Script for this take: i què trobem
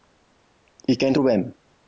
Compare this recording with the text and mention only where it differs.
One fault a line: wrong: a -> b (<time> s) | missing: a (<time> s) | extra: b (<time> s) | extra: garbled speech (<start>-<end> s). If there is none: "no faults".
no faults